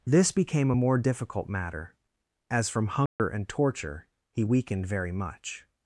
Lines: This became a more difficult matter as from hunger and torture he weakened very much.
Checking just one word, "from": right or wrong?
right